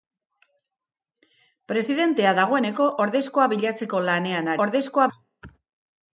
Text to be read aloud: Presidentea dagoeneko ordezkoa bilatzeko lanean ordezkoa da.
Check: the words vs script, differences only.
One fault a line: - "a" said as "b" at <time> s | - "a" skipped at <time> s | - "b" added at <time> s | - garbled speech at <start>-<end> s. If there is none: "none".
none